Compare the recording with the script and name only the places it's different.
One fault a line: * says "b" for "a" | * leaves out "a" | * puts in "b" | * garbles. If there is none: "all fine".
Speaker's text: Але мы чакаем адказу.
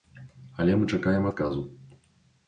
all fine